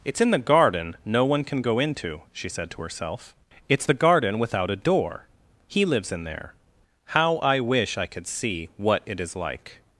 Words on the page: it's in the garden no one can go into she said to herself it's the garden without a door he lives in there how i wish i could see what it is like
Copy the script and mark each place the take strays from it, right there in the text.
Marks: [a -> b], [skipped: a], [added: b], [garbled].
it's in the garden no one can go into she said to herself it's the garden without a door he lives in there how i wish i could see what it is like